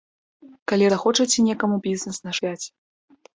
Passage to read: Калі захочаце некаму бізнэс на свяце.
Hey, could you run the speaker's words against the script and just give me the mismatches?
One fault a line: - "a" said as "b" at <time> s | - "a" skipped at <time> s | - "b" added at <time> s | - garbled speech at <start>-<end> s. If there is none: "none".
none